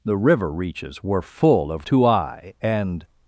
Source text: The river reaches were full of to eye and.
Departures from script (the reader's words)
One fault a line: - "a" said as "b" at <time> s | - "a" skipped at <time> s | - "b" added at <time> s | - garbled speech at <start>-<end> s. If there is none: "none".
none